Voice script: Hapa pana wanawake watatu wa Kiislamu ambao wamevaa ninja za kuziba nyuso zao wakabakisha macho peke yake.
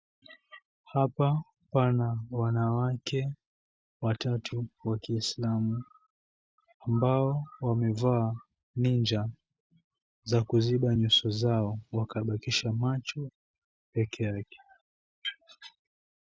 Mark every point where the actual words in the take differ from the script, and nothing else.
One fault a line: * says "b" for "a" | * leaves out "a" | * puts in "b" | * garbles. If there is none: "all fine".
all fine